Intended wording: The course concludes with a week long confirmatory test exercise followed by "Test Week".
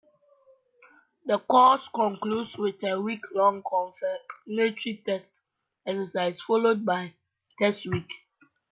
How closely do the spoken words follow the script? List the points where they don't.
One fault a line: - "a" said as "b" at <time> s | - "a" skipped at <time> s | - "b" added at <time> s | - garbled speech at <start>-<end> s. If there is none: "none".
none